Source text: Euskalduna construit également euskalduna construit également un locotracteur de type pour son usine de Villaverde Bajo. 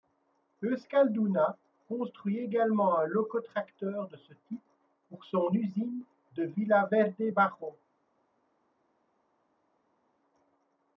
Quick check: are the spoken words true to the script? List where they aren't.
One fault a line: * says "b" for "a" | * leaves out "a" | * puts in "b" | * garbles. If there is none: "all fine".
* leaves out "euskalduna construit également"
* puts in "ce"